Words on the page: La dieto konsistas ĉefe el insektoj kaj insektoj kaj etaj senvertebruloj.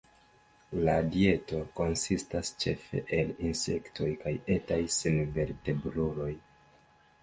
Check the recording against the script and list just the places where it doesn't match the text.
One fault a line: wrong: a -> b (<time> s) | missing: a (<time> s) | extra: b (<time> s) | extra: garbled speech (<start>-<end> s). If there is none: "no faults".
missing: insektoj kaj (4.4 s)